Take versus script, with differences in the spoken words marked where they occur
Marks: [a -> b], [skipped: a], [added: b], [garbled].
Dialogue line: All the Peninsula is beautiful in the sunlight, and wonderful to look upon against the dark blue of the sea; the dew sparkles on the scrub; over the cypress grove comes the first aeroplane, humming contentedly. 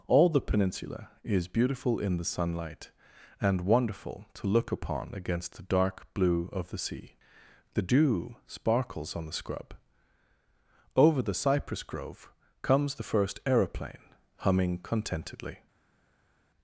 All the Peninsula is beautiful in the sunlight, and wonderful to look upon against the dark blue of the sea; the dew sparkles on the scrub; over the cypress grove comes the first aeroplane, humming contentedly.